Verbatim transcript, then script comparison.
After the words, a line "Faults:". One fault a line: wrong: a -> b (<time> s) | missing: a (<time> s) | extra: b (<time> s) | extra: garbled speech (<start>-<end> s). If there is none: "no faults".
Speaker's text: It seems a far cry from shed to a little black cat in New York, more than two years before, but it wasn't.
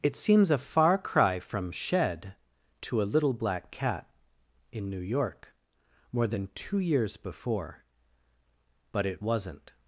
It seems a far cry from shed to a little black cat in New York, more than two years before, but it wasn't.
Faults:
no faults